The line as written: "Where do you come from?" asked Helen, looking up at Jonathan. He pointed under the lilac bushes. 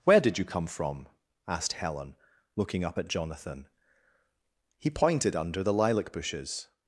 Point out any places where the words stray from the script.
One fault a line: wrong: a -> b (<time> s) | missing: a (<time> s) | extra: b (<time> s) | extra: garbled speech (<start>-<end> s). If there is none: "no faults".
wrong: do -> did (0.2 s)